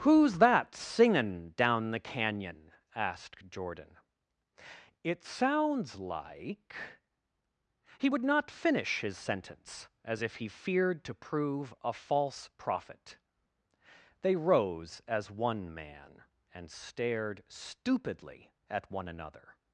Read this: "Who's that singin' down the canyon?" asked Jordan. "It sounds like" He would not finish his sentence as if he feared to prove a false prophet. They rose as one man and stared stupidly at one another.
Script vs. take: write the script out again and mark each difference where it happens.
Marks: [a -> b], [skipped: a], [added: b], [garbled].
"Who's that singin' down the canyon?" asked Jordan. "It sounds like" He would not finish his sentence as if he feared to prove a false prophet. They rose as one man and stared stupidly at one another.